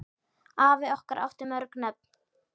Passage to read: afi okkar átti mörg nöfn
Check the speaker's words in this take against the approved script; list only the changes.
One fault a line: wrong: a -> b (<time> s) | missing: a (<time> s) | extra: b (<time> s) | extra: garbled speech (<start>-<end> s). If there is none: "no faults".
no faults